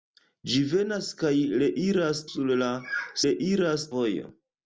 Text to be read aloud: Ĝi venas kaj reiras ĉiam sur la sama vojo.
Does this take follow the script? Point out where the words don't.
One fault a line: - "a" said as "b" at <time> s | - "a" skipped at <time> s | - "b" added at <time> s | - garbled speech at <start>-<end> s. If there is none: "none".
- "ĉiam" skipped at 2.2 s
- "sama" said as "reiras" at 3.3 s